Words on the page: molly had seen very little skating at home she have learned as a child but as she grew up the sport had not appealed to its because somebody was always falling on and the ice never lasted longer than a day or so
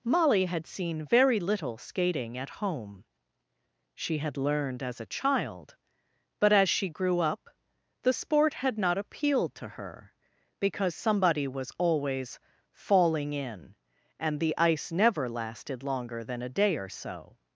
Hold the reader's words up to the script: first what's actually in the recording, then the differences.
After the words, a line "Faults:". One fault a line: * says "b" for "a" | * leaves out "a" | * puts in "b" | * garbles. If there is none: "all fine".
molly had seen very little skating at home she had learned as a child but as she grew up the sport had not appealed to her because somebody was always falling in and the ice never lasted longer than a day or so
Faults:
* says "had" for "have"
* says "her" for "its"
* says "in" for "on"